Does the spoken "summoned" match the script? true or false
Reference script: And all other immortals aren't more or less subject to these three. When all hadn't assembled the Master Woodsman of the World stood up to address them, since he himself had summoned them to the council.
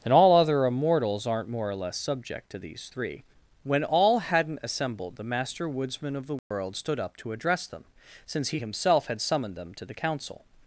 true